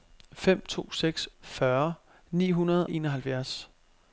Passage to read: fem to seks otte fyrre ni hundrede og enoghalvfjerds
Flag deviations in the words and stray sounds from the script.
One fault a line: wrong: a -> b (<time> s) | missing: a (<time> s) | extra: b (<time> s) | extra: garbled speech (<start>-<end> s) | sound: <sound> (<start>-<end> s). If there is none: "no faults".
missing: otte (1.3 s)
missing: og (2.9 s)